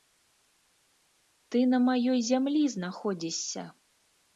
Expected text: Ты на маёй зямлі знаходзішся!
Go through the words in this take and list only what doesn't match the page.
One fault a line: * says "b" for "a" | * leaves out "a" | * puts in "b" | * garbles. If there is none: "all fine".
all fine